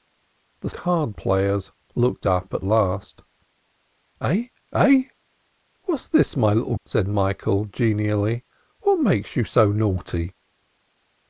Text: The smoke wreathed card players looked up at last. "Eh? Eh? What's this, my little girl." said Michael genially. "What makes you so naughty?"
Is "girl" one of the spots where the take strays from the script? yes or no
yes